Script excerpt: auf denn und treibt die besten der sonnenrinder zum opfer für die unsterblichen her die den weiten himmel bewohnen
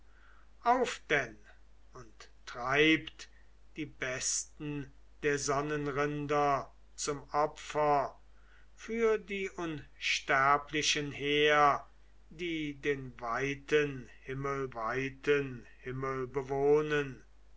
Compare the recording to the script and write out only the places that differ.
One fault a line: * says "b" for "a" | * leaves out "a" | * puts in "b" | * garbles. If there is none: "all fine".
* puts in "weiten himmel"